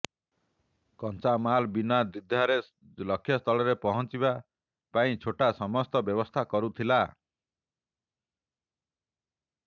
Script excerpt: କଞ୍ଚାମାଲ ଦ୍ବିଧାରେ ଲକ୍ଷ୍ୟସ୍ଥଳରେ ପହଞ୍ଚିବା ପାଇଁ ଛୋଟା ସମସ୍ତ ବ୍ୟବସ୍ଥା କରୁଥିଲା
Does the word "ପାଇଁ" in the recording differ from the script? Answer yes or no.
no